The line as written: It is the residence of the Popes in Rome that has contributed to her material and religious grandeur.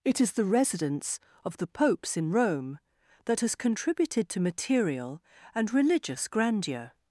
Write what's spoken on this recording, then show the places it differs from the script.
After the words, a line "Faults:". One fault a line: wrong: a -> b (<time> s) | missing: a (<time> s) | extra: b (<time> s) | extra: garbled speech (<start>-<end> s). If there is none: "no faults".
It is the residence of the Popes in Rome that has contributed to material and religious grandeur.
Faults:
missing: her (4.4 s)